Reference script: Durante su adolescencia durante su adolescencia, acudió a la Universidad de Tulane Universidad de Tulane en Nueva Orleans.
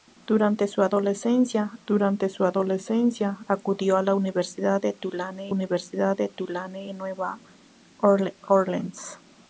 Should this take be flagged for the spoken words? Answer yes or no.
no